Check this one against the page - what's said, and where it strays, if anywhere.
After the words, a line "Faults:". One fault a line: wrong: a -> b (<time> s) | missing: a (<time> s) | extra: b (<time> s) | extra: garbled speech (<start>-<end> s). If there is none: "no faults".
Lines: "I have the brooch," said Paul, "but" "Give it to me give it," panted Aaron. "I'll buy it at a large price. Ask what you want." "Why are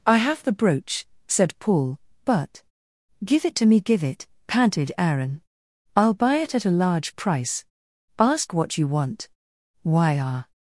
"I have the brooch," said Paul, "but" "Give it to me give it," panted Aaron. "I'll buy it at a large price. Ask what you want." "Why are
Faults:
no faults